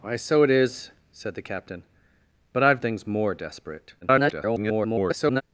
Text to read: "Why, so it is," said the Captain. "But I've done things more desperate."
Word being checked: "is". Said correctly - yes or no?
yes